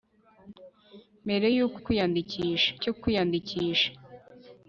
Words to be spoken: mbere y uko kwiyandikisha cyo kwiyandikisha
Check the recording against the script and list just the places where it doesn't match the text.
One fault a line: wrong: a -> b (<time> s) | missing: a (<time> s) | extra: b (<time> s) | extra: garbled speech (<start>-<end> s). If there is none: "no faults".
no faults